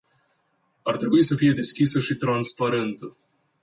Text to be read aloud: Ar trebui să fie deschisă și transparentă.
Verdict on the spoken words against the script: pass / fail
pass